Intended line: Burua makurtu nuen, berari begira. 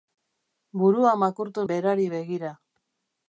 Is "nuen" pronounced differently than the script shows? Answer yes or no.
yes